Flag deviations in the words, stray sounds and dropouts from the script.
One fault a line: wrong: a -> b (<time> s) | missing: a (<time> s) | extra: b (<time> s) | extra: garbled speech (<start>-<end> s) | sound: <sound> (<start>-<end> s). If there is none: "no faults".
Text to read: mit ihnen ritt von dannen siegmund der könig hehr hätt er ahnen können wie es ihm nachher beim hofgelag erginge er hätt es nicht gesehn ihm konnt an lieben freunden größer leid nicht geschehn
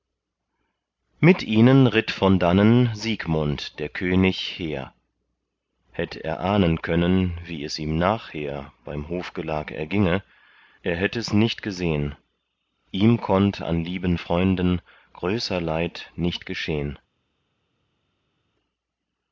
no faults